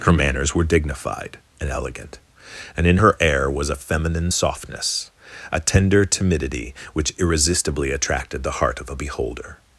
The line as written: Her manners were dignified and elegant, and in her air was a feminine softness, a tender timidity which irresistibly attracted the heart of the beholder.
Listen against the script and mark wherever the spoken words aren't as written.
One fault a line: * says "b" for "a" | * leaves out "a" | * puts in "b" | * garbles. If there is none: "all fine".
* says "a" for "the"